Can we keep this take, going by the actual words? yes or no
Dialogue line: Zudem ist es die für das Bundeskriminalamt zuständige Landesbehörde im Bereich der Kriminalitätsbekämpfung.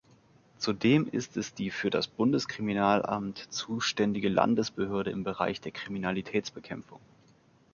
yes